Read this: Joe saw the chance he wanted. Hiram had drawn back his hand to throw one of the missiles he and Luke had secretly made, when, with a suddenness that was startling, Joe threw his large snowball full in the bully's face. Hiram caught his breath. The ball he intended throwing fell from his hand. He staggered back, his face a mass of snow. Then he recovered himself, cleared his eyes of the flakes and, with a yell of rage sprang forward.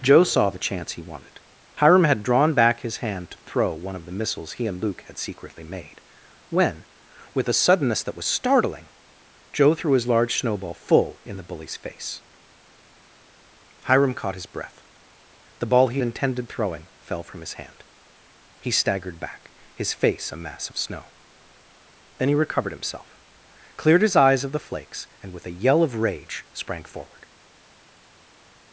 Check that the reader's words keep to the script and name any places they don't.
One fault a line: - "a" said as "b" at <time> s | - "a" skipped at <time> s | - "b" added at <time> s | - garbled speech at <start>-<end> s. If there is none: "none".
none